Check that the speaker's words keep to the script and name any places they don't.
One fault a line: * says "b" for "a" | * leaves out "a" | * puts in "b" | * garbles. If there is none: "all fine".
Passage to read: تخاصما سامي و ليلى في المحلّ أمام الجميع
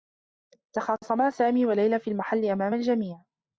all fine